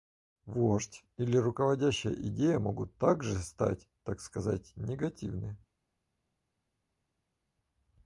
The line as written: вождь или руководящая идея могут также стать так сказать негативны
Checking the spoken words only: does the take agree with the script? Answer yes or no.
yes